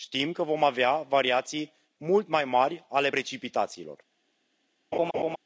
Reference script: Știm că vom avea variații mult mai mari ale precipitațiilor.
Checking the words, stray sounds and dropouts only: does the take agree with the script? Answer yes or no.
no